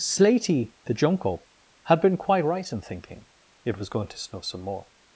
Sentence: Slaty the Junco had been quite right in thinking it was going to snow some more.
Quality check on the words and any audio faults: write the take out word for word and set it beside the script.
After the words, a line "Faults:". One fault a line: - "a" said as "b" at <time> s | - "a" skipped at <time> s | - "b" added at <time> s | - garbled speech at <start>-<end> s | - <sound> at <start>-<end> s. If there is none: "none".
Slaty the Junco had been quite right in thinking it was going to snow some more.
Faults:
none